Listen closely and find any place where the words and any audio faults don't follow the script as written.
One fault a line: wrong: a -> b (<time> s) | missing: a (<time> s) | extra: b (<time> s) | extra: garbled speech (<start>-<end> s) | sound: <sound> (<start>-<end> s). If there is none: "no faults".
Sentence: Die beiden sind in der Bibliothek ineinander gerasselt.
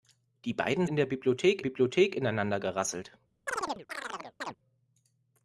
missing: sind (0.9 s)
extra: Bibliothek (1.6 s)
sound: chirp (3.5-4.6 s)